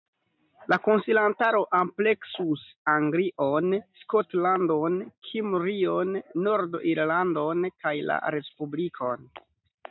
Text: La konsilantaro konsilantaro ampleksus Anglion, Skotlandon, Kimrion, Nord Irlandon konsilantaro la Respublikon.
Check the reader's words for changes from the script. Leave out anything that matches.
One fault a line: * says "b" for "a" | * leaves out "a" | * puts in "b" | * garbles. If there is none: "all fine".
* leaves out "konsilantaro"
* says "kaj" for "konsilantaro"